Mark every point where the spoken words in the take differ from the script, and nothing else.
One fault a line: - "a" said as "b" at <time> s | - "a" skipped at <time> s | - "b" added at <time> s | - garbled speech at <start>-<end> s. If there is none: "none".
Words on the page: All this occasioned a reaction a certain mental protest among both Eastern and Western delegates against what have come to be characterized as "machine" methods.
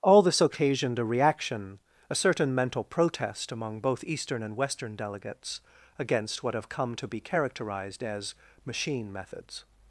none